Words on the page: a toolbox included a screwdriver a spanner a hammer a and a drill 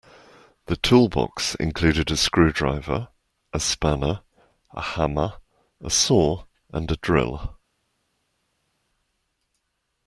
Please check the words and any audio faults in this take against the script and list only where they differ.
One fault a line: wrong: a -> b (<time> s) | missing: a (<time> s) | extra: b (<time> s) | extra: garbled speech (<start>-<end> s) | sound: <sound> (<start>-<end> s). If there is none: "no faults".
wrong: a -> the (0.7 s)
extra: saw (5.9 s)